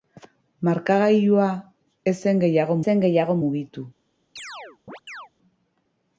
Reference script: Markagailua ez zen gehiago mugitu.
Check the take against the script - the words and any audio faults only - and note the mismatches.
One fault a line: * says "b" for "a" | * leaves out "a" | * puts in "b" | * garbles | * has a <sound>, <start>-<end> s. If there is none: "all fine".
* puts in "zen gehiago"
* has a chirp, 4.4-5.3 s